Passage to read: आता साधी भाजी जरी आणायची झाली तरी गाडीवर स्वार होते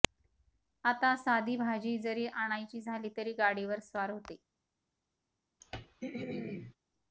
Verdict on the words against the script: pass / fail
pass